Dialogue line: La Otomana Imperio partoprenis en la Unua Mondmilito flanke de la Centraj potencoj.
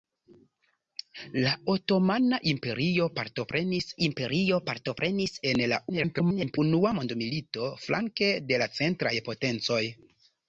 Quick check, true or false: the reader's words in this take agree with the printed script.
false